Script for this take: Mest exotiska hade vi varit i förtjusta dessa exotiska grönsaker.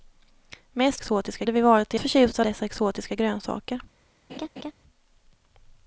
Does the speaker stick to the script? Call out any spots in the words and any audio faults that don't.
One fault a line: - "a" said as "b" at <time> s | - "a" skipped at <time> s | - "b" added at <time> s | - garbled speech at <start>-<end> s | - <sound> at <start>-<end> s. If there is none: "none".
- laugh at 4.3-4.7 s